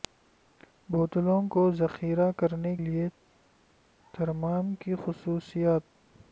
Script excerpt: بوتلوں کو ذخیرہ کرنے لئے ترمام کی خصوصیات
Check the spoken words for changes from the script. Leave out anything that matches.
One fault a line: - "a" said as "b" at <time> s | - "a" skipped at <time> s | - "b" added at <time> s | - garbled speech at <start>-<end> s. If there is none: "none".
none